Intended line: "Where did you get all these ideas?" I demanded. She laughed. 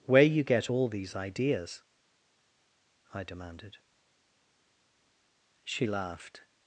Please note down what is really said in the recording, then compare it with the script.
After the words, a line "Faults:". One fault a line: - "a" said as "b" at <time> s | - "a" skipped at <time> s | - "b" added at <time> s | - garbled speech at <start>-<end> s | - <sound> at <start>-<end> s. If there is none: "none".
"Where you get all these ideas?" I demanded. She laughed.
Faults:
- "did" skipped at 0.2 s